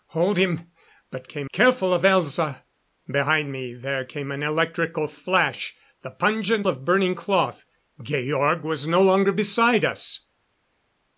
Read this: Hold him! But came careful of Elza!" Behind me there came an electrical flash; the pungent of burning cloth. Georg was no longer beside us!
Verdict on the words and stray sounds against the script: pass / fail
pass